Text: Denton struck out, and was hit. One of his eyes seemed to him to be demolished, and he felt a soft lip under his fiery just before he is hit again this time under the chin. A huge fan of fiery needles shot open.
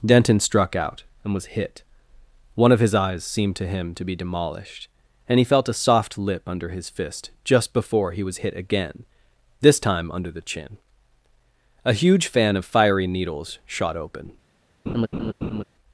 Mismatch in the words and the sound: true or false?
true